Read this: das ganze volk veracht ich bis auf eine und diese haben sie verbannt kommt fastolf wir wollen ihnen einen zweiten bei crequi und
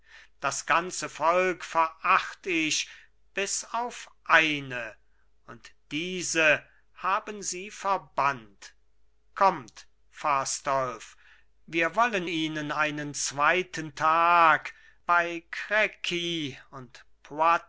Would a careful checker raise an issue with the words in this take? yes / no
yes